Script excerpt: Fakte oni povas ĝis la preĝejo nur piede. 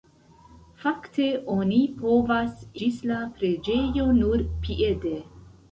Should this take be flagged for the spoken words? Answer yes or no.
no